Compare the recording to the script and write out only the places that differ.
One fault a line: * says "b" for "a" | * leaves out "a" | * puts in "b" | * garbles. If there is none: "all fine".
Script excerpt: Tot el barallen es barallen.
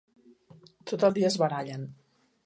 * says "dia" for "barallen"